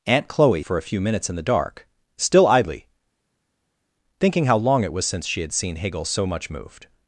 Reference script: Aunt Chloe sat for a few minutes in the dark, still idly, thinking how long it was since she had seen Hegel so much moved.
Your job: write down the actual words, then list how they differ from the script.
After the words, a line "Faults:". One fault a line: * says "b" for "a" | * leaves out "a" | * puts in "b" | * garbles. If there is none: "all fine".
Aunt Chloe for a few minutes in the dark, still idly, thinking how long it was since she had seen Hegel so much moved.
Faults:
* leaves out "sat"